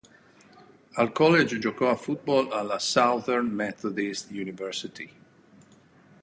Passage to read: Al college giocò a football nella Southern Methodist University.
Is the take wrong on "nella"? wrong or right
wrong